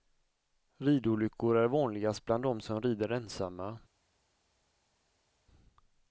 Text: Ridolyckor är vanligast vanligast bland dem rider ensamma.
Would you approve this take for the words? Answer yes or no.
no